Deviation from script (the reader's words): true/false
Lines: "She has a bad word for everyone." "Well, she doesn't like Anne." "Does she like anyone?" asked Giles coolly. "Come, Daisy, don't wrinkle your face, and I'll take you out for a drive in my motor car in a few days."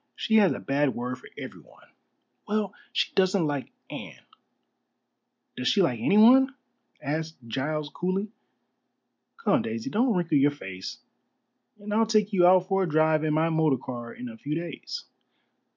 false